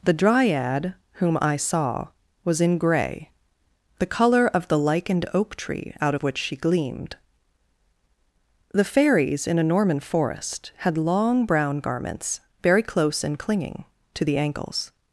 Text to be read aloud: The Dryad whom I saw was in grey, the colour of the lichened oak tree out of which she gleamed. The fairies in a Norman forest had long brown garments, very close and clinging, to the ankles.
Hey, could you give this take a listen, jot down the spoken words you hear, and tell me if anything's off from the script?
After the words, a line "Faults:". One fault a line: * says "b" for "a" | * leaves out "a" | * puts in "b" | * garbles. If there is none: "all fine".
The Dryad whom I saw was in grey, the colour of the lichened oak tree out of which she gleamed. The fairies in a Norman forest had long brown garments, very close and clinging, to the ankles.
Faults:
all fine